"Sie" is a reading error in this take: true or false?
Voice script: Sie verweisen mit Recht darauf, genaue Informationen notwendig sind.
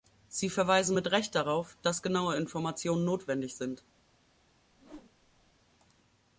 false